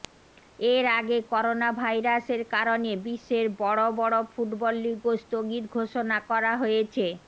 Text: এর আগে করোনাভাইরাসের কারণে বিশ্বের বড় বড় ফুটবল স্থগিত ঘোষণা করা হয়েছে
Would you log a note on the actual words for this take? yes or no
yes